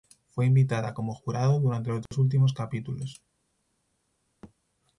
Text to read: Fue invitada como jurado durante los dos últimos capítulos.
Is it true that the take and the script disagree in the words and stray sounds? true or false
true